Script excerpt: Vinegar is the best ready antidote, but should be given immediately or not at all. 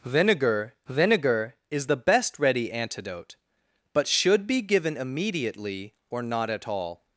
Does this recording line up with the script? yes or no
no